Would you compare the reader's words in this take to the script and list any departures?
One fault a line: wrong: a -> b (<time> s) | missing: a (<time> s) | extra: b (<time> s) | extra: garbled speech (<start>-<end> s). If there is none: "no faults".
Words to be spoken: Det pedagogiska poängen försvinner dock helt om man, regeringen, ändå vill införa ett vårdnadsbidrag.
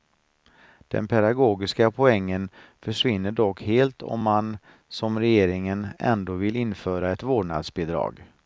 wrong: Det -> Den (0.9 s)
extra: som (4.9 s)